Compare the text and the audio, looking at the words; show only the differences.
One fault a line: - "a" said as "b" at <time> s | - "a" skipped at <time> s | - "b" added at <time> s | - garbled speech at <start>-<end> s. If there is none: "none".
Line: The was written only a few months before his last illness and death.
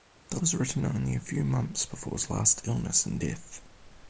none